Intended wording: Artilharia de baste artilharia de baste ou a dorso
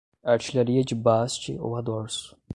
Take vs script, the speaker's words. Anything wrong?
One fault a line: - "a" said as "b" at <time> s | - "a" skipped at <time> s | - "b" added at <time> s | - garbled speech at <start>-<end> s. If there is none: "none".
- "artilharia de baste" skipped at 1.6 s